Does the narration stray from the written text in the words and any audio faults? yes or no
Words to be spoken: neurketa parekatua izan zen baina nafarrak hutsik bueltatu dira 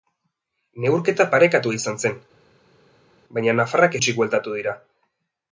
no